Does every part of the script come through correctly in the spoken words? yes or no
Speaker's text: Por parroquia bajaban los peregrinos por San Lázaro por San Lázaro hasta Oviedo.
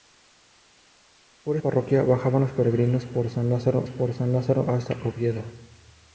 yes